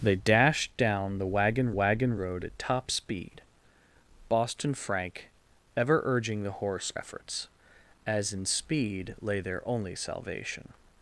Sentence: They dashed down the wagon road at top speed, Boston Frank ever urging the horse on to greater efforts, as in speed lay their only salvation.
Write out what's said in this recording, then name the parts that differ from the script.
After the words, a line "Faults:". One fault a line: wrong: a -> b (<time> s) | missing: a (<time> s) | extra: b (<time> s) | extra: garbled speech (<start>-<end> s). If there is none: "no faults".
They dashed down the wagon wagon road at top speed, Boston Frank ever urging the horse efforts, as in speed lay their only salvation.
Faults:
extra: wagon (1.7 s)
missing: on to greater (6.9 s)